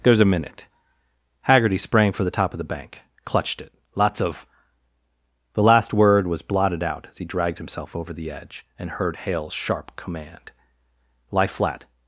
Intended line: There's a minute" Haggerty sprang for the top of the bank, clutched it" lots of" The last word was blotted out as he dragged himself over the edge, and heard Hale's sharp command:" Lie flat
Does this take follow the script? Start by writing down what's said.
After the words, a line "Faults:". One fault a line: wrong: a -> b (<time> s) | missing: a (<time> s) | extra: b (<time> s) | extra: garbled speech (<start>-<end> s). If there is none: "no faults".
There's a minute" Haggerty sprang for the top of the bank, clutched it" lots of" The last word was blotted out as he dragged himself over the edge, and heard Hale's sharp command:" Lie flat
Faults:
no faults